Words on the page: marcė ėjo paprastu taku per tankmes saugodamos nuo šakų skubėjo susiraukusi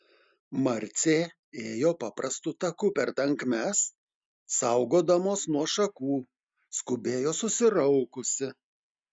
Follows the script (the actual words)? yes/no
yes